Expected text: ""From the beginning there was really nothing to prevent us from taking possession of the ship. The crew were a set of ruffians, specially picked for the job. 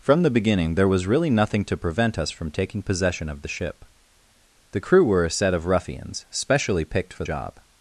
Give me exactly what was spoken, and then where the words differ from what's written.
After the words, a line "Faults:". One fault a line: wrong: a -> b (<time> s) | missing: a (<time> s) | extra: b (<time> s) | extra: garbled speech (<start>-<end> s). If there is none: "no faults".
""From the beginning there was really nothing to prevent us from taking possession of the ship. The crew were a set of ruffians, specially picked for job.
Faults:
missing: the (7.2 s)